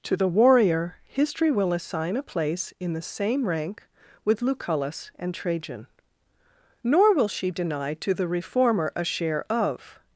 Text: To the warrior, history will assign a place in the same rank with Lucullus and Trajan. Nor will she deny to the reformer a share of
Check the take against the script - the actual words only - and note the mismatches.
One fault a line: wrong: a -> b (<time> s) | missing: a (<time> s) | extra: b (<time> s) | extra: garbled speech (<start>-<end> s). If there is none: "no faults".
no faults